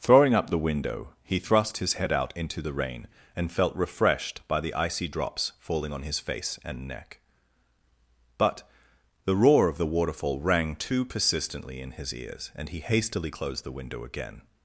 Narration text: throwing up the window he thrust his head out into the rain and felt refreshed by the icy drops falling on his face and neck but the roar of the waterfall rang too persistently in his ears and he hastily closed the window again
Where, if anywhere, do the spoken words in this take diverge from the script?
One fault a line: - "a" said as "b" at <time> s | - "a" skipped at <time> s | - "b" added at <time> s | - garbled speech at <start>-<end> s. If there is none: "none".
none